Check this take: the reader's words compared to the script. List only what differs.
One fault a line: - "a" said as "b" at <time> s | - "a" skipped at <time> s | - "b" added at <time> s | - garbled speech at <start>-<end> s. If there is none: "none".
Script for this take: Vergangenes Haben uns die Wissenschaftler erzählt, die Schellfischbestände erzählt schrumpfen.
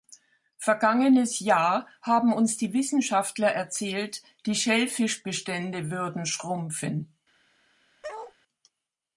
- "Jahr" added at 1.4 s
- "erzählt" said as "würden" at 5.9 s